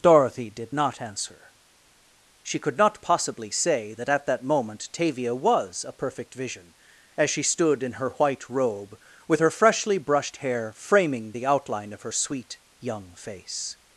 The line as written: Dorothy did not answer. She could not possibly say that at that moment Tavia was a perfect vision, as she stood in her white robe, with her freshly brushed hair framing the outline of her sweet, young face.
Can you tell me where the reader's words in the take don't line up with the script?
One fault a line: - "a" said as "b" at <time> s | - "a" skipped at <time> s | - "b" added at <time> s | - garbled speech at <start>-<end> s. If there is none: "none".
none